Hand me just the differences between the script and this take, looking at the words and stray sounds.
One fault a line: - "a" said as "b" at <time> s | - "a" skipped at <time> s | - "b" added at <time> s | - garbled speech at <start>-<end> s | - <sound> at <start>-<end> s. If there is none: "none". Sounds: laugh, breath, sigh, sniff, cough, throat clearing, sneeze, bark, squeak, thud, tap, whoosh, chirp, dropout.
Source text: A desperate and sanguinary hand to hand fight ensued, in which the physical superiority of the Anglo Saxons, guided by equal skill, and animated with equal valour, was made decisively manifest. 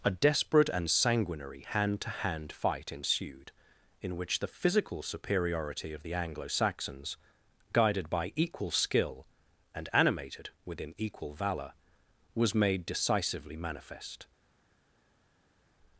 - "with" said as "within" at 10.6 s